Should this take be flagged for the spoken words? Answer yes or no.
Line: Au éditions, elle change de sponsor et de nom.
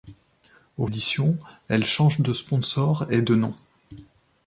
no